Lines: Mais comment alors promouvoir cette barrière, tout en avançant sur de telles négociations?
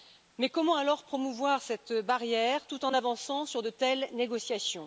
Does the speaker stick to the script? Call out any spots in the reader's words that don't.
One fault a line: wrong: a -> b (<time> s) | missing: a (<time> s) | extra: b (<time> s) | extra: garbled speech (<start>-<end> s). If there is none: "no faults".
no faults